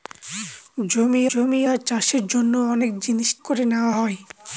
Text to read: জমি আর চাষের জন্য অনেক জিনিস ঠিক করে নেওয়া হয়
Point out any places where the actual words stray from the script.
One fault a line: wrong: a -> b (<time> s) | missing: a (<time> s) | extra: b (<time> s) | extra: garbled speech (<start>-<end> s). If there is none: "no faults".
extra: জমি (1.3 s)
missing: ঠিক (3.3 s)